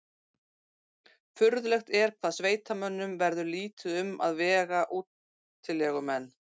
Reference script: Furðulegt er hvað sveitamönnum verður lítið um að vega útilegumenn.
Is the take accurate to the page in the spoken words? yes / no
yes